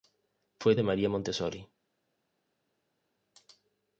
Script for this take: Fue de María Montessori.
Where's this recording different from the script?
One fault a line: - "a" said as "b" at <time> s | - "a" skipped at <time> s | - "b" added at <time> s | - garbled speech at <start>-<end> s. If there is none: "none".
none